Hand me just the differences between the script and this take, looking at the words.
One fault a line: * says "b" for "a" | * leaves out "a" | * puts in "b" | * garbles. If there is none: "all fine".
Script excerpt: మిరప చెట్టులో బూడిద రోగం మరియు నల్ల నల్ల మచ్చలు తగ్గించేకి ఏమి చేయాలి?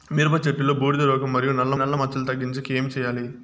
all fine